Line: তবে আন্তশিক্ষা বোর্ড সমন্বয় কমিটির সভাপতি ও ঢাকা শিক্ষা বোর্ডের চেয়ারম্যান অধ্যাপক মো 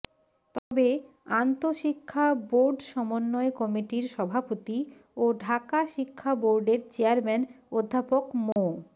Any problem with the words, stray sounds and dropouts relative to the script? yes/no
yes